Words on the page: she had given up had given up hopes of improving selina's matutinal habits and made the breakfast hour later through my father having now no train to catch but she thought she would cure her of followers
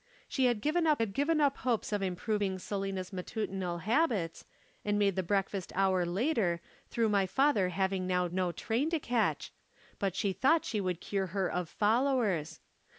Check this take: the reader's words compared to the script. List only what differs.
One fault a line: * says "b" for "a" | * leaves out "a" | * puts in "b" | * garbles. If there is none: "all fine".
all fine